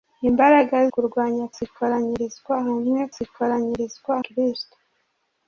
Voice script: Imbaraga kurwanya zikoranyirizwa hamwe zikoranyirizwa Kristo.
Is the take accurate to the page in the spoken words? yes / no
yes